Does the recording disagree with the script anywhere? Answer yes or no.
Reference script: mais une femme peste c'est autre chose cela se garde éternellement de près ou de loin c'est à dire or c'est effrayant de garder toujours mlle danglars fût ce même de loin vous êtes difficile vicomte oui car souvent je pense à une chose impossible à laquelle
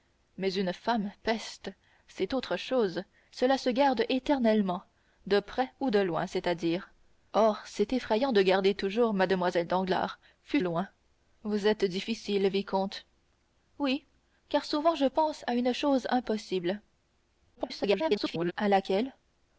yes